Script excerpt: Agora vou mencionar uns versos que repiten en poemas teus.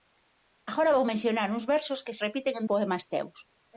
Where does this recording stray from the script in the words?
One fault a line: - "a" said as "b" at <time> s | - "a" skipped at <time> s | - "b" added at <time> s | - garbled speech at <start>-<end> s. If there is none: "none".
none